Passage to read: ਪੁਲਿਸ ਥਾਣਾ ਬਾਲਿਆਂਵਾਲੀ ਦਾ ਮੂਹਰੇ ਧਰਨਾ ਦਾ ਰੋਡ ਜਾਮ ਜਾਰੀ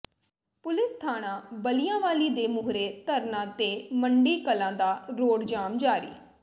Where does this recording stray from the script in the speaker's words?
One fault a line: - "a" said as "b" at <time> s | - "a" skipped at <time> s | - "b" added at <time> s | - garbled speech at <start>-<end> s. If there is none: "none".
- "ਦਾ" said as "ਦੇ" at 2.3 s
- "ਤੇ ਮੰਡੀ ਕਲਾਂ" added at 3.6 s